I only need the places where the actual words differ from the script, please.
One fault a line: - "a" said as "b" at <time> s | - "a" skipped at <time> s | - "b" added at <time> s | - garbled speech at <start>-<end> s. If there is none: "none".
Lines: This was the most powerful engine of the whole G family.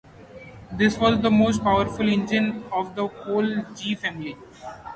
none